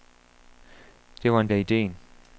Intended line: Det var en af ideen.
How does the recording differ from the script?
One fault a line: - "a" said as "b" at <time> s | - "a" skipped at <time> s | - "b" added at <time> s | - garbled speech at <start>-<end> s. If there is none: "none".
none